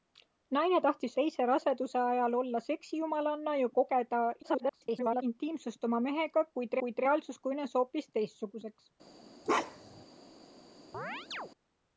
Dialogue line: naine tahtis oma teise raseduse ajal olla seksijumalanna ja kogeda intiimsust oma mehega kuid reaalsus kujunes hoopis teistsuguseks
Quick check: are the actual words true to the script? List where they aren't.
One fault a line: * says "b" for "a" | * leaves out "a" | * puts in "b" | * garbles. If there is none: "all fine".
* leaves out "oma"
* garbles
* puts in "kuid"